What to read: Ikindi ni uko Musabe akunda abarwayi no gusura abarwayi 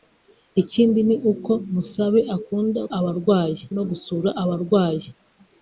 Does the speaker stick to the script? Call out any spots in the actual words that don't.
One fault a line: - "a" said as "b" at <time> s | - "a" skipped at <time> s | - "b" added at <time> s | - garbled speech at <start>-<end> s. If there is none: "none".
none